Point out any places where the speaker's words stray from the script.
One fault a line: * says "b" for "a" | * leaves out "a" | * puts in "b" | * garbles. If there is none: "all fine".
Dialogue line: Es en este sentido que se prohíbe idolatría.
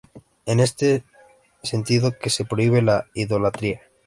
* puts in "la"